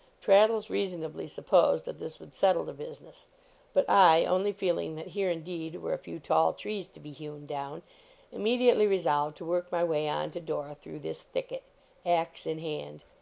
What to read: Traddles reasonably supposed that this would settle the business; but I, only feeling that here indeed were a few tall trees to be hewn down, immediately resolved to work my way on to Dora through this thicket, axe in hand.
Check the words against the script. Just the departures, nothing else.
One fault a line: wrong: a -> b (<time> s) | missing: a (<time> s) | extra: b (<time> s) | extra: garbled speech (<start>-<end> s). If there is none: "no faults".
no faults